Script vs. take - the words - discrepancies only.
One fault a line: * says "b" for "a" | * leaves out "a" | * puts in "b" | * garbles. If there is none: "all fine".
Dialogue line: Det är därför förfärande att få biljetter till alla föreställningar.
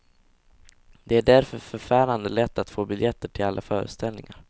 * puts in "lätt"